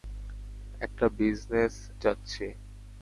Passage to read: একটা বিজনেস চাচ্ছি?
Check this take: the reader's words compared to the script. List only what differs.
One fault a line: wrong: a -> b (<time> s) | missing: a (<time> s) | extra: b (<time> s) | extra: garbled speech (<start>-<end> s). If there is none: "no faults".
no faults